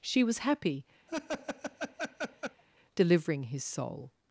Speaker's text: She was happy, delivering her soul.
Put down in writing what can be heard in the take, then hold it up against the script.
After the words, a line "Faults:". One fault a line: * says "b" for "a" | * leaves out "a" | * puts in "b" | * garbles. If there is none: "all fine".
She was happy, delivering his soul.
Faults:
* says "his" for "her"